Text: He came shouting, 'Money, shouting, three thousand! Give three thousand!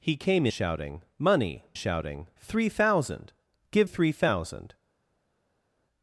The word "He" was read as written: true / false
true